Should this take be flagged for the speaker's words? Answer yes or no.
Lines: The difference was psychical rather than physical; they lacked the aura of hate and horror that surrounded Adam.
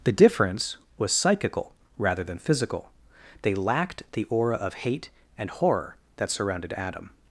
no